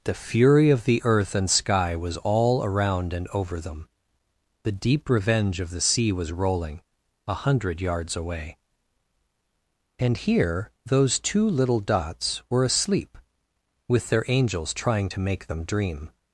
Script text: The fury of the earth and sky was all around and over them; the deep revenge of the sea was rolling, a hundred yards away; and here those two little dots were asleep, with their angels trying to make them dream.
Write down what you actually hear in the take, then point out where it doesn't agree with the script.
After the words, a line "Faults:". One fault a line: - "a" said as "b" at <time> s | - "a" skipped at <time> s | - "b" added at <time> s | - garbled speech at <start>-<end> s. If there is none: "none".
The fury of the earth and sky was all around and over them; the deep revenge of the sea was rolling, a hundred yards away; and here those two little dots were asleep, with their angels trying to make them dream.
Faults:
none